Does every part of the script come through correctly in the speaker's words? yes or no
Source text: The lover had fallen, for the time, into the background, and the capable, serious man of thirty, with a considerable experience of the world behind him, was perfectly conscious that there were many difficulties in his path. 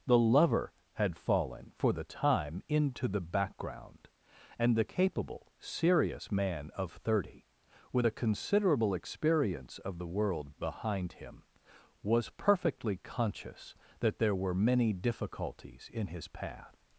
yes